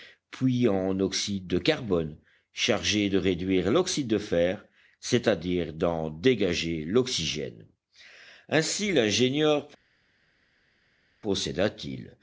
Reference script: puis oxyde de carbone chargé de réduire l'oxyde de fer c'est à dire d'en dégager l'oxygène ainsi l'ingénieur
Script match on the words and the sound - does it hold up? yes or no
no